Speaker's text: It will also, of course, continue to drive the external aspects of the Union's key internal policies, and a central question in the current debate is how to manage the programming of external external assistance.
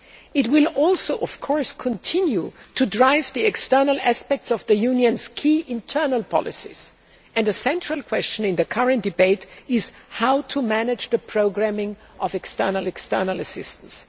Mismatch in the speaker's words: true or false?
false